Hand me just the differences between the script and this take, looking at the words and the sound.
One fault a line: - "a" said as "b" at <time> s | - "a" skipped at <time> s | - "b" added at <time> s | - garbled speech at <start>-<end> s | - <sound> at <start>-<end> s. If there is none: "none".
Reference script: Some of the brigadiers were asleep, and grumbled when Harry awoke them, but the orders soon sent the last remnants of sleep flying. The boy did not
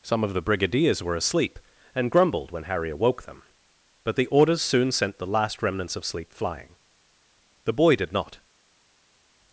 none